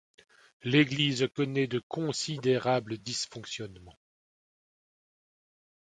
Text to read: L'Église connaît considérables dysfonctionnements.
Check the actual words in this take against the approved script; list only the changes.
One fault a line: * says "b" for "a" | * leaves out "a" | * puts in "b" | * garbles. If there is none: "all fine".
* puts in "de"